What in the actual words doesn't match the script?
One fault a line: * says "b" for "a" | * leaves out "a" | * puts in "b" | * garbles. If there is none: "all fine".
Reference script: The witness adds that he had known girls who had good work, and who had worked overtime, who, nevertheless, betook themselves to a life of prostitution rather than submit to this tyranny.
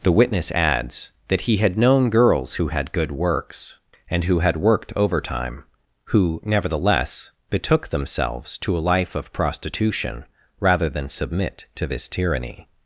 * says "works" for "work"